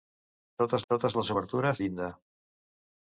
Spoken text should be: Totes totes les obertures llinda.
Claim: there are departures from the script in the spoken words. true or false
false